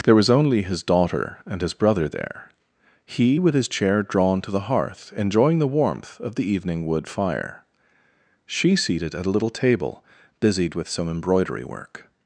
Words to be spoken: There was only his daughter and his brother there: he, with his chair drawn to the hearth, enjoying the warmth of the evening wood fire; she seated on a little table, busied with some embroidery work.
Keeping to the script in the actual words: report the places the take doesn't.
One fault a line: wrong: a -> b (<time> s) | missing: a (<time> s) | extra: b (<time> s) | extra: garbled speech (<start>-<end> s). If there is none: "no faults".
wrong: on -> at (9.1 s)